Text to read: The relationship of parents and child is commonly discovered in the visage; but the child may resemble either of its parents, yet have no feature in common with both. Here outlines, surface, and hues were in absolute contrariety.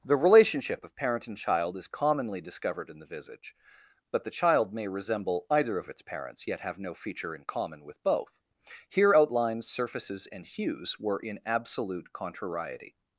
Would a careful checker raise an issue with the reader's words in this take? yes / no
yes